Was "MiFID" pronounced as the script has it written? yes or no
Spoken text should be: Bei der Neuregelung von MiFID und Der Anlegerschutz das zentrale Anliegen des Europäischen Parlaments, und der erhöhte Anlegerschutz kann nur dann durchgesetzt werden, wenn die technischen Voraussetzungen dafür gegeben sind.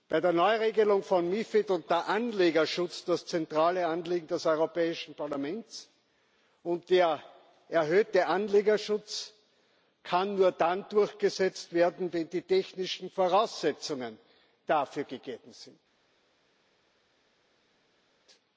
yes